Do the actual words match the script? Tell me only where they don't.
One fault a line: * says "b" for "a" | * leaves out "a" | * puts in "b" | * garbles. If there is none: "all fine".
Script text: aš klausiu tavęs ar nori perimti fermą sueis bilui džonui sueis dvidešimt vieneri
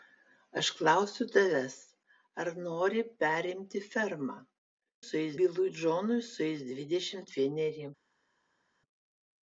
all fine